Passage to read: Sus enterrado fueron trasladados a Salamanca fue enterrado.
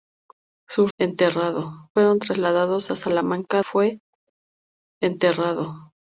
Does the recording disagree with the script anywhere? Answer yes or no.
no